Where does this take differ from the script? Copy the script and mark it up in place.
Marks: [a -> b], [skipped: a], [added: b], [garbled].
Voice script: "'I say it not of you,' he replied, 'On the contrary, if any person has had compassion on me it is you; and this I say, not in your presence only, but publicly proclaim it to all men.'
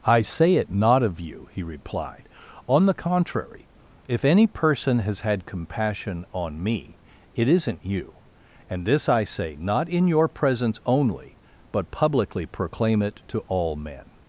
"'I say it not of you,' he replied, 'On the contrary, if any person has had compassion on me it [is -> isn't] you; and this I say, not in your presence only, but publicly proclaim it to all men.'